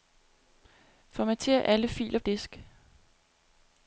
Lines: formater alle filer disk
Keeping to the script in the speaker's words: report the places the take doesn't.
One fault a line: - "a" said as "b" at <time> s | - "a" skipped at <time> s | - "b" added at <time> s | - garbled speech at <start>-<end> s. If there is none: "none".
none